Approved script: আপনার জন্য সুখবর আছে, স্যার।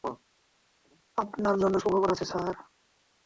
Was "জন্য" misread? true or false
false